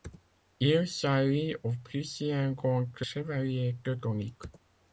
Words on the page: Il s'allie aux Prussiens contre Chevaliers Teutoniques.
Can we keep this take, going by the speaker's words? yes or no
yes